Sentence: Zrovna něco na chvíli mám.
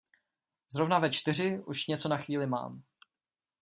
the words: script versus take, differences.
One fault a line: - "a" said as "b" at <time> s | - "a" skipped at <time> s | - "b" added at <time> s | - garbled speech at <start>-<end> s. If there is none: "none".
- "ve čtyři už" added at 1.0 s